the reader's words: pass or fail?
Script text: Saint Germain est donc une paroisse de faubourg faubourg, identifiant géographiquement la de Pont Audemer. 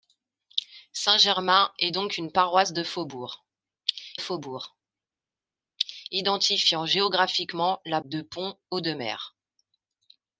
pass